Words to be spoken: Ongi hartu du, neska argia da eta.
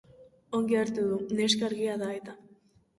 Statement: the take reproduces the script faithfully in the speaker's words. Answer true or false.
true